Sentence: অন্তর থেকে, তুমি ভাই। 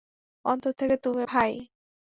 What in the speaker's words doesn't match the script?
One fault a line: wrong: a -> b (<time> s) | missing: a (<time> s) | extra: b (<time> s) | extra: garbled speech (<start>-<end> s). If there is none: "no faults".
no faults